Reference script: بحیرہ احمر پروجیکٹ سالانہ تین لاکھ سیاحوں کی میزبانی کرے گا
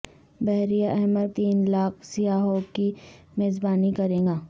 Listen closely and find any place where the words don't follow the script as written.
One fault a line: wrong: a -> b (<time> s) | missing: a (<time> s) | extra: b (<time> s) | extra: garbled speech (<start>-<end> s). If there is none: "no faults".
missing: پروجیکٹ سالانہ (1.3 s)